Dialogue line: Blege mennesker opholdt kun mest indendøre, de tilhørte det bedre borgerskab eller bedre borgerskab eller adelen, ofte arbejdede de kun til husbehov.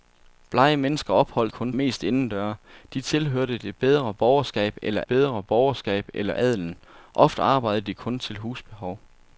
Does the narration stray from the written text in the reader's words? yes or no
no